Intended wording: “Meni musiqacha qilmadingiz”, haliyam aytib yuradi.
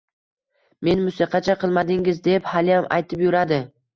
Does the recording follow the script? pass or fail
fail